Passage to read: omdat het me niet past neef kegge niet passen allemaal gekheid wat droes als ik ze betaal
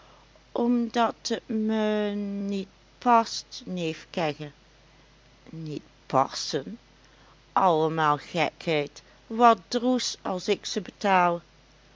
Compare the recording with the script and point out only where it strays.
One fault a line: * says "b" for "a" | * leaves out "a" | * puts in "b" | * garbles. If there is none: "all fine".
all fine